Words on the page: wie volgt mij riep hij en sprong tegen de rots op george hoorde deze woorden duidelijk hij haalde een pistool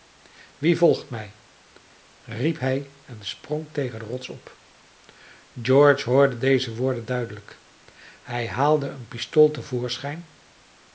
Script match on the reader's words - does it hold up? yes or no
yes